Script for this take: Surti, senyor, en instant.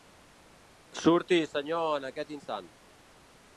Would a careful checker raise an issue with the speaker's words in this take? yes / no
yes